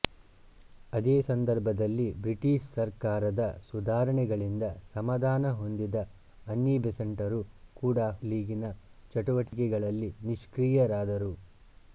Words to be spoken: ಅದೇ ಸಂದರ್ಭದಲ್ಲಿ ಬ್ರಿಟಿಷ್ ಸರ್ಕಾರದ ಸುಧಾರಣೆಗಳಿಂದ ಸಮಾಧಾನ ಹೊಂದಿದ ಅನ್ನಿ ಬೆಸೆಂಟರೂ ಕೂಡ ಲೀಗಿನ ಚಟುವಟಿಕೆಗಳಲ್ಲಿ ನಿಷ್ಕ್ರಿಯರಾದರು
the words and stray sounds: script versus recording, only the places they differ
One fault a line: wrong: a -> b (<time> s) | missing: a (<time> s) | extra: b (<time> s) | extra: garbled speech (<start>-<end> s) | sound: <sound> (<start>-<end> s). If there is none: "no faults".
sound: dropout (9.5-9.5 s)